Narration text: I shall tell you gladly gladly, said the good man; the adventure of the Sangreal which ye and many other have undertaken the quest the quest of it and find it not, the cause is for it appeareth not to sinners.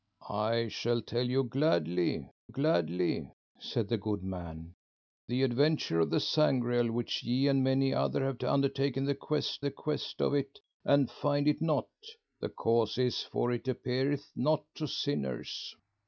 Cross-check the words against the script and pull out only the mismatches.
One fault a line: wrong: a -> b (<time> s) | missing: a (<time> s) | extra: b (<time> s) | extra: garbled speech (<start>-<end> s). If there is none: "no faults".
no faults